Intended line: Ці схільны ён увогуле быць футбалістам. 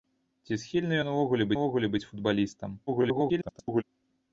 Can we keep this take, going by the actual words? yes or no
no